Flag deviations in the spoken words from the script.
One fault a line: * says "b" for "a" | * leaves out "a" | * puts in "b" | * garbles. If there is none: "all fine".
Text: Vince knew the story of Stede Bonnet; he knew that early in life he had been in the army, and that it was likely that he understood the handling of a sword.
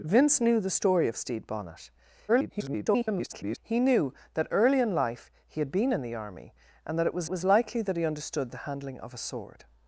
* garbles
* puts in "was"